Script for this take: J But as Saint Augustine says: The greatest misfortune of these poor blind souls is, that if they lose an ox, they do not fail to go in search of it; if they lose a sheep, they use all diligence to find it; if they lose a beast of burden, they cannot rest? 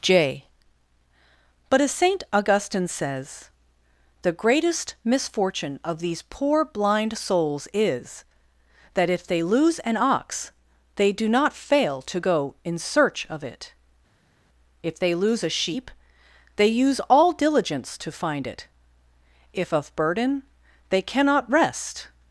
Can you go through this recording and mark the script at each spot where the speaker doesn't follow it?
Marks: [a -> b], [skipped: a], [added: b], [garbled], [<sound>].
J But as Saint Augustine says: The greatest misfortune of these poor blind souls is, that if they lose an ox, they do not fail to go in search of it; if they lose a sheep, they use all diligence to find it; if [skipped: they lose a beast] of burden, they cannot rest?